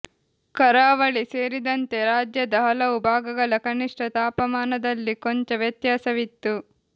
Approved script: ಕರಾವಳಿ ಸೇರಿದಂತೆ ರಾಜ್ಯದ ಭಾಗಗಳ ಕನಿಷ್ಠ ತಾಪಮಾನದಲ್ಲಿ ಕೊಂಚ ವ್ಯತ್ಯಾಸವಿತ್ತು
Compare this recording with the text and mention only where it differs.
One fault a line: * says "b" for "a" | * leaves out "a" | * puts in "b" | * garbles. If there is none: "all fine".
* puts in "ಹಲವು"